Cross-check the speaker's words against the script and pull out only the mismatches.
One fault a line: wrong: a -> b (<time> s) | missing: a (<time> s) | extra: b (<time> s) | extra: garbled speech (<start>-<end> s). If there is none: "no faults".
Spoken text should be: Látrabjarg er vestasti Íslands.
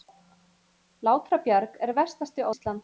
no faults